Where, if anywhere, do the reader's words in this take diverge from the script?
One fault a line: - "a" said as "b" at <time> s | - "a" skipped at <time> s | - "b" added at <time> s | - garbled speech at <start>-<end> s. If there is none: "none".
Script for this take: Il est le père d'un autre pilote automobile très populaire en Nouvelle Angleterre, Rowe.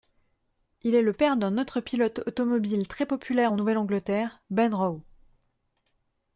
- "Ben" added at 4.5 s